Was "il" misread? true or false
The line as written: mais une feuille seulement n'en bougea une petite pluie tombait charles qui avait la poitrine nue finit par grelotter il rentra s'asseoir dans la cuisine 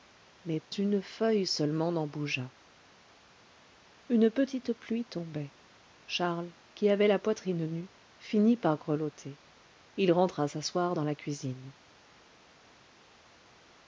false